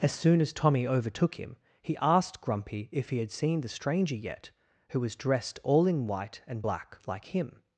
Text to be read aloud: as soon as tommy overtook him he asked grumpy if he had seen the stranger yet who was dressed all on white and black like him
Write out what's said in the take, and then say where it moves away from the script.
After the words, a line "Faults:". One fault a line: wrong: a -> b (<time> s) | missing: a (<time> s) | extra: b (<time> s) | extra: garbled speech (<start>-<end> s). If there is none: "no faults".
as soon as tommy overtook him he asked grumpy if he had seen the stranger yet who was dressed all in white and black like him
Faults:
wrong: on -> in (5.8 s)